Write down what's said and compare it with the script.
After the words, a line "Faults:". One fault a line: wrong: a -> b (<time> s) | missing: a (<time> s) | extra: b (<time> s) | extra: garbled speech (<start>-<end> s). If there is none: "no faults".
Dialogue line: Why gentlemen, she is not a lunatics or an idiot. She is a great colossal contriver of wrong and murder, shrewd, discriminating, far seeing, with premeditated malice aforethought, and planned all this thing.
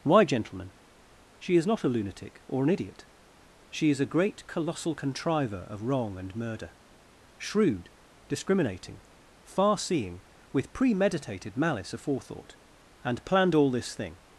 Why gentlemen, she is not a lunatic or an idiot. She is a great colossal contriver of wrong and murder, shrewd, discriminating, far seeing, with premeditated malice aforethought, and planned all this thing.
Faults:
wrong: lunatics -> lunatic (1.9 s)